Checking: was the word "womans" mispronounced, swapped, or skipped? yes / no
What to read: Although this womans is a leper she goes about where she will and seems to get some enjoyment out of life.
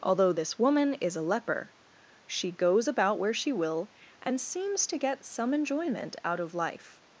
yes